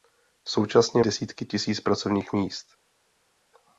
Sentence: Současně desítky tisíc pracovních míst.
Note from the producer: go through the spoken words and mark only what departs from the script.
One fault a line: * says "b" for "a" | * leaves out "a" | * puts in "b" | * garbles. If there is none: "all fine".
all fine